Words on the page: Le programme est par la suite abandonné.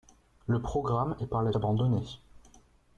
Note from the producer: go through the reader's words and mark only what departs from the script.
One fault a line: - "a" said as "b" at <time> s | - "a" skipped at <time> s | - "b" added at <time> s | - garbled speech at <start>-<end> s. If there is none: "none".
- "suite" skipped at 1.5 s